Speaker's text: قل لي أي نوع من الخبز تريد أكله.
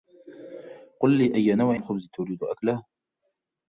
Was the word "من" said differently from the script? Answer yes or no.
yes